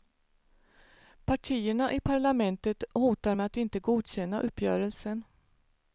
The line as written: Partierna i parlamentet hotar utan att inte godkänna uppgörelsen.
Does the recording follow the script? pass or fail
fail